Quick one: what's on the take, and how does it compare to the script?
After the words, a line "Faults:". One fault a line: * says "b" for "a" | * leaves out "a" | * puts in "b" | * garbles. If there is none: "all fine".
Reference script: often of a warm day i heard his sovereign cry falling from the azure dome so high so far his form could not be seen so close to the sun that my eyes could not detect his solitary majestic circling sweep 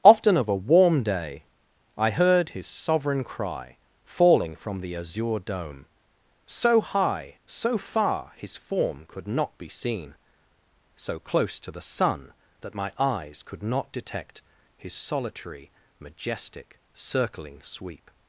often of a warm day i heard his sovereign cry falling from the azure dome so high so far his form could not be seen so close to the sun that my eyes could not detect his solitary majestic circling sweep
Faults:
all fine